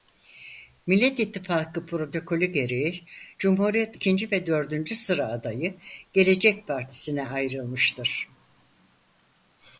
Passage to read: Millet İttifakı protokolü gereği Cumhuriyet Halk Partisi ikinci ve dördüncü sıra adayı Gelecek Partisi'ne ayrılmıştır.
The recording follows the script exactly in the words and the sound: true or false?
false